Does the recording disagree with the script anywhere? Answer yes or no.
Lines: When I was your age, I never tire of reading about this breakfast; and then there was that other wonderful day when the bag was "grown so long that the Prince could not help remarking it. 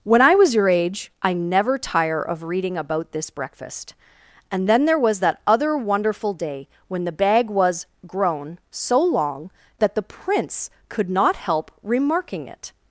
no